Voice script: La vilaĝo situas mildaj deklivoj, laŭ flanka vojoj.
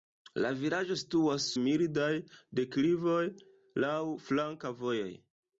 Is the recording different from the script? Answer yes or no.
no